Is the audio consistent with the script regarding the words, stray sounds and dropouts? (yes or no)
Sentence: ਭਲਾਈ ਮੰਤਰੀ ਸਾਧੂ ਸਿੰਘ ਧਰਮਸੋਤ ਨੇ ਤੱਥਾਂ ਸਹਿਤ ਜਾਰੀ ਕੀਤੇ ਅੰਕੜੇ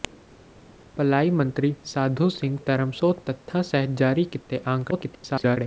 no